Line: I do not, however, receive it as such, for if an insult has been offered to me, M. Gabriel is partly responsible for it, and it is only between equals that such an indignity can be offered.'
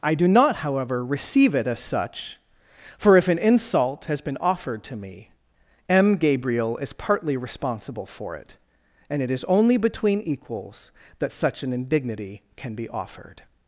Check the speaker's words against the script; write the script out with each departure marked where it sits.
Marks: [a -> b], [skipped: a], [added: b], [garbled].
I do not, however, receive it as such, for if an insult has been offered to me, M. Gabriel is partly responsible for it, and it is only between equals that such an indignity can be offered.'